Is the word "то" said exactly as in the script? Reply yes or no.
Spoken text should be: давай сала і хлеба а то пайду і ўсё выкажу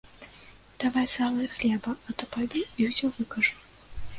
yes